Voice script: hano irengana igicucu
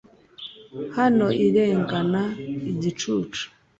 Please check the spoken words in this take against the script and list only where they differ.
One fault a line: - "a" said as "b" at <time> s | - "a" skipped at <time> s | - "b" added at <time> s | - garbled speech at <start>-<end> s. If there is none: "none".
none